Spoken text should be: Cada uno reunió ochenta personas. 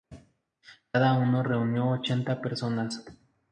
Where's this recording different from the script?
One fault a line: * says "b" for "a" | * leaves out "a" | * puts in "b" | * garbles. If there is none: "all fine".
all fine